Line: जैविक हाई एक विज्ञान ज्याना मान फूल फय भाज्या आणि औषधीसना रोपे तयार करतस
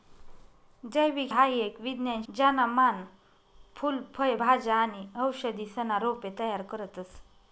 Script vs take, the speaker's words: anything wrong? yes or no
no